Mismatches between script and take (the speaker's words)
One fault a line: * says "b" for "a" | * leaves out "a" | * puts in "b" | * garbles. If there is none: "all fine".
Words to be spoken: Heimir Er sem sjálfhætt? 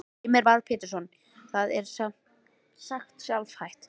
* puts in "Már Pétursson Það"
* puts in "sagt"